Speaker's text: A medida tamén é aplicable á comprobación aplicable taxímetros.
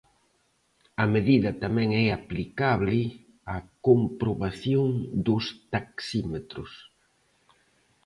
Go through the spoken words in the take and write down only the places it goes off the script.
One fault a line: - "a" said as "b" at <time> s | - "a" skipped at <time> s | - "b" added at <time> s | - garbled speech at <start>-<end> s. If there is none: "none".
- "aplicable" said as "dos" at 5.3 s